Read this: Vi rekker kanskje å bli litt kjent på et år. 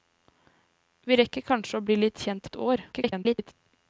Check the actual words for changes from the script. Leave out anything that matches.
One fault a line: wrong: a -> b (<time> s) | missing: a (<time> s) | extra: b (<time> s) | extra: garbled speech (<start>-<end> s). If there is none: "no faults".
missing: på (2.5 s)
extra: garbled speech (2.9-3.5 s)